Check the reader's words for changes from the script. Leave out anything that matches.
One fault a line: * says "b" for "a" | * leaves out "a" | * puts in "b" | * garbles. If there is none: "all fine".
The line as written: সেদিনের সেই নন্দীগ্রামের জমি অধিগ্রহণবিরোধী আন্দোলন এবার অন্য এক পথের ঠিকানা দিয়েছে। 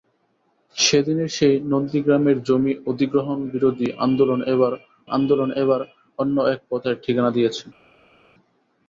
* puts in "আন্দোলন এবার"